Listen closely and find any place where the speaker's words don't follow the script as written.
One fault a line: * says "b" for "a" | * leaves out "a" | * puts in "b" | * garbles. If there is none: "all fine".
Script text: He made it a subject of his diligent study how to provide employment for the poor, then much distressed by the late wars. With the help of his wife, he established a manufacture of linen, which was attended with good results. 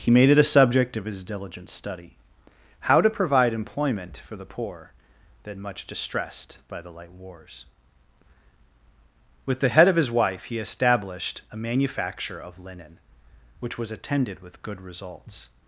* says "light" for "late"
* says "head" for "help"